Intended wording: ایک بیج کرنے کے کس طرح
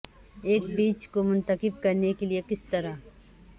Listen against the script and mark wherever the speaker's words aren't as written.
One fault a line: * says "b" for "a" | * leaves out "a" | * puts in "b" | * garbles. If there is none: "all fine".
* puts in "کو منتخب"
* puts in "لئے"